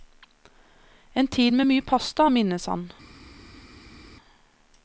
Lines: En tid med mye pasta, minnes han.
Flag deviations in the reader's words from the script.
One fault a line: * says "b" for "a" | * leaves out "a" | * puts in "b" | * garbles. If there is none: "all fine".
all fine